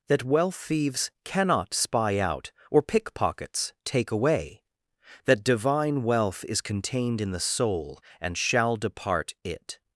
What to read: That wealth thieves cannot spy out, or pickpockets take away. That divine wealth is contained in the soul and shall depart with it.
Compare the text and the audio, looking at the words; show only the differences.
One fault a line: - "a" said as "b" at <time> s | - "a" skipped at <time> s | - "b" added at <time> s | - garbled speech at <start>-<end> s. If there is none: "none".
- "with" skipped at 9.3 s